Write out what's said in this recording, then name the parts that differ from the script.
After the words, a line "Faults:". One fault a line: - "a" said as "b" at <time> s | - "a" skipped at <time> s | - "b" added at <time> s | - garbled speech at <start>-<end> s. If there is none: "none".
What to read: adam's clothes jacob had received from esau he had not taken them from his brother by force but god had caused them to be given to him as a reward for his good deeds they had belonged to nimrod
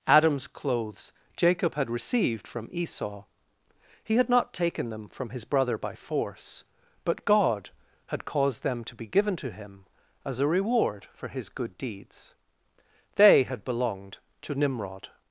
adam's clothes jacob had received from esau he had not taken them from his brother by force but god had caused them to be given to him as a reward for his good deeds they had belonged to nimrod
Faults:
none